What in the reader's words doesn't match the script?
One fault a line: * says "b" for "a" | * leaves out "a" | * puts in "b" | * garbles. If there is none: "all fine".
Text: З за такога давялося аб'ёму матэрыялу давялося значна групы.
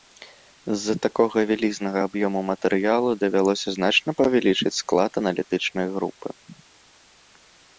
* says "вялізнага" for "давялося"
* puts in "павялічыць склад аналітычнай"